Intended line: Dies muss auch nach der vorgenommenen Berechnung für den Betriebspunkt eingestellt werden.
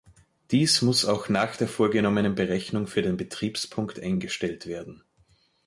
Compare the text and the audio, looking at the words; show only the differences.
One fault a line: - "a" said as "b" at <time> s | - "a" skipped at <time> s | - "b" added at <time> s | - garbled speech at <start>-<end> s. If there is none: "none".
none